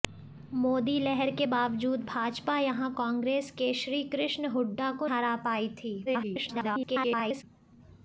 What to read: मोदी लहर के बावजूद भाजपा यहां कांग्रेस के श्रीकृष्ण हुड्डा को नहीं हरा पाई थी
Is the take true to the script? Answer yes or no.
no